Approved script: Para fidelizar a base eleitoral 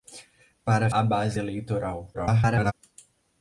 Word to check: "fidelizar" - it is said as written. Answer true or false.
false